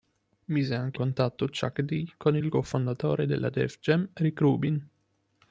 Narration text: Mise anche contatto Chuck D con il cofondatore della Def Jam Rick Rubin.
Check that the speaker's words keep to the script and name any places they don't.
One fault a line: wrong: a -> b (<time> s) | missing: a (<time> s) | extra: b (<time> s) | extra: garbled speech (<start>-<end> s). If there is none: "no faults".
no faults